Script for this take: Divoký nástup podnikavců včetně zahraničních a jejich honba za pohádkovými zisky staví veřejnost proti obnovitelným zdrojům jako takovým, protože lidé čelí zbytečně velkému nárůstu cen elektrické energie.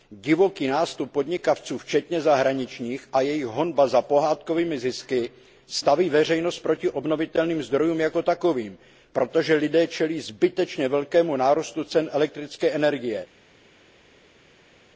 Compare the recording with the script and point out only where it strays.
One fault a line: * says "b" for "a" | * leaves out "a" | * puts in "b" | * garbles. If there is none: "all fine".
all fine